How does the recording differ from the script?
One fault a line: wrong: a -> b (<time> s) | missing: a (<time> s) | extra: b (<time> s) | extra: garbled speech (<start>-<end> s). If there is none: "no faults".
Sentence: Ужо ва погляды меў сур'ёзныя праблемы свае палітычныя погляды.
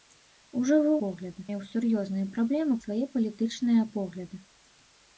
no faults